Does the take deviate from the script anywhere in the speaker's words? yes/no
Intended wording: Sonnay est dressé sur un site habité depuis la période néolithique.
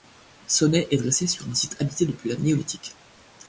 yes